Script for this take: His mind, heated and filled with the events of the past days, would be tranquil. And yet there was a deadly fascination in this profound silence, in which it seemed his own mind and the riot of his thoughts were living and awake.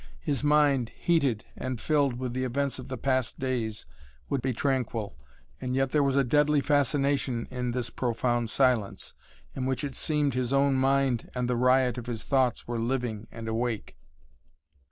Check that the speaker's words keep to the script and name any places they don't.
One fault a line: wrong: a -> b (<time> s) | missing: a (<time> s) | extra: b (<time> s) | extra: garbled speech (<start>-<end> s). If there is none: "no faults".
no faults